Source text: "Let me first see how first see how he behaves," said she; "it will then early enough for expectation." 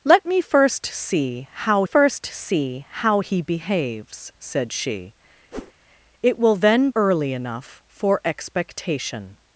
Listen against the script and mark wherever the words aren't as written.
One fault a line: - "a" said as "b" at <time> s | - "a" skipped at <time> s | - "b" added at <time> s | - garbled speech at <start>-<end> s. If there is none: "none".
none